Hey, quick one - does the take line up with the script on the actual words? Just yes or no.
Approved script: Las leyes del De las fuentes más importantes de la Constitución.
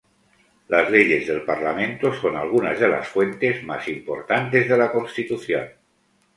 no